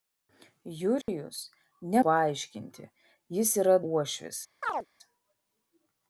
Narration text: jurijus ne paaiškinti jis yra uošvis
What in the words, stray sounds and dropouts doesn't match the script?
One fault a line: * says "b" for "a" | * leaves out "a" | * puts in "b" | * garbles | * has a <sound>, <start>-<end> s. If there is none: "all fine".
* has a dropout, 1.0-1.1 s
* has a chirp, 4.6-4.9 s